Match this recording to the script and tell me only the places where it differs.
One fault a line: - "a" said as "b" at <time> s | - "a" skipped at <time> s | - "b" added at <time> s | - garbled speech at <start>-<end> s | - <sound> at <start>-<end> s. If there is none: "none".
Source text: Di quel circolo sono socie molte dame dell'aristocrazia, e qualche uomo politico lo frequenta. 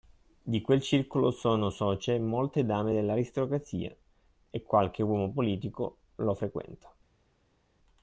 none